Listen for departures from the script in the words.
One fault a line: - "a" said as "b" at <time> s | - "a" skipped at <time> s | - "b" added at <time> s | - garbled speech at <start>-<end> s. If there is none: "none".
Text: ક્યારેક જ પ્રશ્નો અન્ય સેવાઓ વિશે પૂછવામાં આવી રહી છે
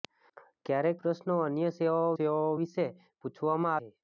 - "જ" skipped at 1.0 s
- "સેવાઓ" added at 2.1 s
- "આવી રહી" skipped at 3.8 s